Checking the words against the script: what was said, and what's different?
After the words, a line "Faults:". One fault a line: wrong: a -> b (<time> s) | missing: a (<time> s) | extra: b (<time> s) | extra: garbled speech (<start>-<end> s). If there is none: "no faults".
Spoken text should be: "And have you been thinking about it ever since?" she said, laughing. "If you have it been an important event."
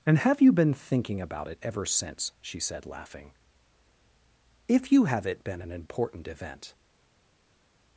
"And have you been thinking about it ever since?" she said, laughing. "If you have it been an important event."
Faults:
no faults